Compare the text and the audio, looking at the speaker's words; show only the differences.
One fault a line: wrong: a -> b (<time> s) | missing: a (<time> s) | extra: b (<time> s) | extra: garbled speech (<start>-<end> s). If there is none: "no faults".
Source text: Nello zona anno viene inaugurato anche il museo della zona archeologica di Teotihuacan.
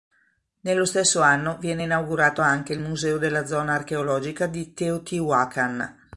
wrong: zona -> stesso (0.8 s)